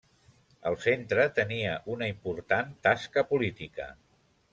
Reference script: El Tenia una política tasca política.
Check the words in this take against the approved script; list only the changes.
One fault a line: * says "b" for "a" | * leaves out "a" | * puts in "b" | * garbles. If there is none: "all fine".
* puts in "Centre"
* says "important" for "política"